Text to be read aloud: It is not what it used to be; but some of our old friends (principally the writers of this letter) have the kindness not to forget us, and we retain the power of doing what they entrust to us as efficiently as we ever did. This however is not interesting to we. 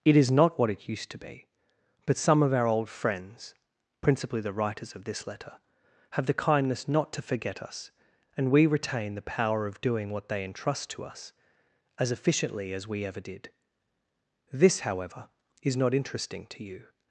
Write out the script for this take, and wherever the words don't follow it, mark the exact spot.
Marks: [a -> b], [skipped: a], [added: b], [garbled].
It is not what it used to be; but some of our old friends (principally the writers of this letter) have the kindness not to forget us, and we retain the power of doing what they entrust to us as efficiently as we ever did. This however is not interesting to [we. -> you]